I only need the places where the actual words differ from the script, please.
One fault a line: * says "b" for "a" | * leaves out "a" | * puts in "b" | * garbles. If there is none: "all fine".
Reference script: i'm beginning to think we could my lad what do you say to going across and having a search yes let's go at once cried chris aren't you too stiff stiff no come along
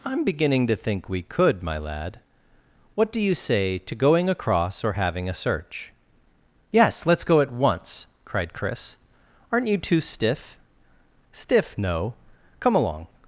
* says "or" for "and"